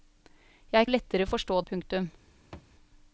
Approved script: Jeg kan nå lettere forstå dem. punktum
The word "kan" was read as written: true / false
false